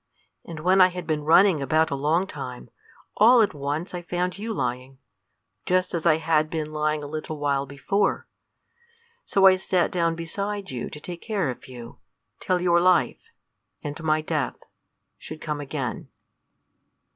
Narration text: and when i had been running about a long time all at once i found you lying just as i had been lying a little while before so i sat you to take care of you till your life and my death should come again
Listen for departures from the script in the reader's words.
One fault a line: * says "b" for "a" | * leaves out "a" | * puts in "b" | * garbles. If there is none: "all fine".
* puts in "down beside"